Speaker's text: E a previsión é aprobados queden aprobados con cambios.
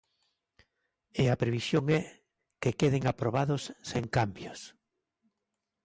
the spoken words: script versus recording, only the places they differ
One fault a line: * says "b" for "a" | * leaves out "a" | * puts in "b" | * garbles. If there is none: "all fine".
* says "que" for "aprobados"
* says "sen" for "con"